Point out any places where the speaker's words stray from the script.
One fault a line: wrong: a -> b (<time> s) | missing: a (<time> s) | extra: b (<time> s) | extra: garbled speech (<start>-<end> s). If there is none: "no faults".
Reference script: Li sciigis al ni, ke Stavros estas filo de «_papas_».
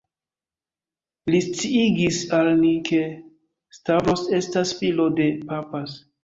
no faults